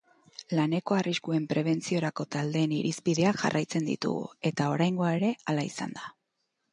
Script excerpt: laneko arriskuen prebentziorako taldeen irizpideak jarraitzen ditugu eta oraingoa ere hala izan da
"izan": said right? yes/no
yes